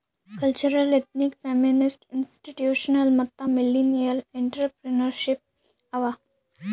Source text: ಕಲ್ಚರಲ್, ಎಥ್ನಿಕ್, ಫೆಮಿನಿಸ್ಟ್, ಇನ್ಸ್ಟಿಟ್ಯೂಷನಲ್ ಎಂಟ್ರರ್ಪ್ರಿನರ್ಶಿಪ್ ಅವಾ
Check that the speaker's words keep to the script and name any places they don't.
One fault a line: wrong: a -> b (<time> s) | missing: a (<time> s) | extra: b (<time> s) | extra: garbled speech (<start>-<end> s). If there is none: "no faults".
extra: ಮತ್ತ ಮಿಲ್ಲಿನಿಯಲ್ (3.2 s)